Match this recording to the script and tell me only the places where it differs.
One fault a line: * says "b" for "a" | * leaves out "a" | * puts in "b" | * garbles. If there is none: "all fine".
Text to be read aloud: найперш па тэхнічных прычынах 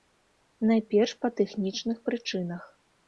all fine